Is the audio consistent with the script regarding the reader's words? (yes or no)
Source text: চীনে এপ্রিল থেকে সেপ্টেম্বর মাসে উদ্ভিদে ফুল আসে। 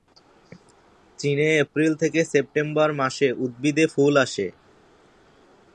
yes